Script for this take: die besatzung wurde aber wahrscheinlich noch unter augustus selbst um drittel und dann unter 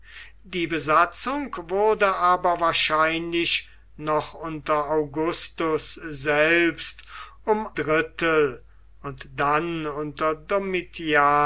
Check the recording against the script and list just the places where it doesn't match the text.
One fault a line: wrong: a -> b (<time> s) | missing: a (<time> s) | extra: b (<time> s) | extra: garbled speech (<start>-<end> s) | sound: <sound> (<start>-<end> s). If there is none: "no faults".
no faults